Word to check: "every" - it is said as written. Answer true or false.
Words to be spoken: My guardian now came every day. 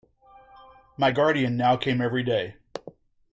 true